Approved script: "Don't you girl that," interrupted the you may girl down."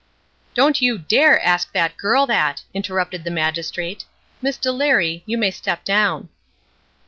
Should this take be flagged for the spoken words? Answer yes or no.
yes